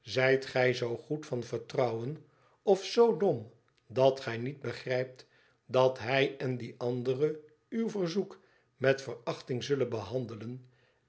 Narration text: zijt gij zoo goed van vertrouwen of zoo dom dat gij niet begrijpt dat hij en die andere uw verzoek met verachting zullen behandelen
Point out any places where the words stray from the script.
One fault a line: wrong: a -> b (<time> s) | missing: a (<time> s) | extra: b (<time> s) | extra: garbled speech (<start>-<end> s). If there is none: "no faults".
no faults